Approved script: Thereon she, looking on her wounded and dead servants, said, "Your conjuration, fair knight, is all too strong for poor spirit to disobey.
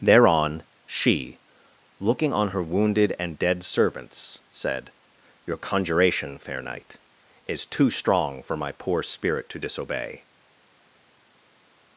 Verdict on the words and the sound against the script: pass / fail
fail